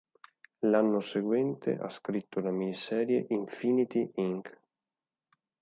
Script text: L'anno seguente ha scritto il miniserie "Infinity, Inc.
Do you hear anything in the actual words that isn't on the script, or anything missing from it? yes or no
yes